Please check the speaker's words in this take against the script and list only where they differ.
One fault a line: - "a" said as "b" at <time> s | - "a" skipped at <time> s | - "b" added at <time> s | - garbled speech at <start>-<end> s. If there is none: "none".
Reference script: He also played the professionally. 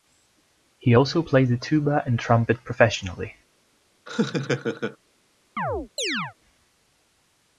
- "tuba and trumpet" added at 1.6 s